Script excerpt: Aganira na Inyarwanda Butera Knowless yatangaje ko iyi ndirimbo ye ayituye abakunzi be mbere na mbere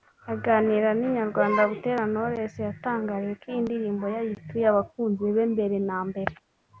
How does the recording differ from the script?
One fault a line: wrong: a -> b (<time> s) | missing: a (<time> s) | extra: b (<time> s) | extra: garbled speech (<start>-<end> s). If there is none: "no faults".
no faults